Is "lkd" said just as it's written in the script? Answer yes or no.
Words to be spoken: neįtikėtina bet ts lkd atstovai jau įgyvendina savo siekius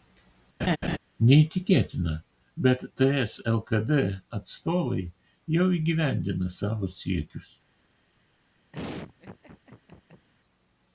yes